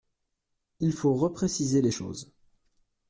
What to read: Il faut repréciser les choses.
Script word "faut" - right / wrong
right